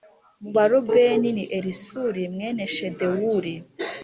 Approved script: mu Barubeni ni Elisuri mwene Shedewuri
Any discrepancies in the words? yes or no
no